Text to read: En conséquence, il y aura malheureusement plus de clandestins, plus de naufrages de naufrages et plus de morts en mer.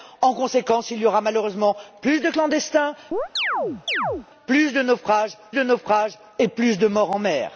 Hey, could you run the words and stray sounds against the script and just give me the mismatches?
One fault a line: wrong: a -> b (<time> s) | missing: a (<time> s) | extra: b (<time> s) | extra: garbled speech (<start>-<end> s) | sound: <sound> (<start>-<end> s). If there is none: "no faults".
sound: chirp (3.1-4.3 s)